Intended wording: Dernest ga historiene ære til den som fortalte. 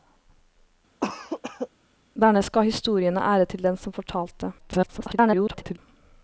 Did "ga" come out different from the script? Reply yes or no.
no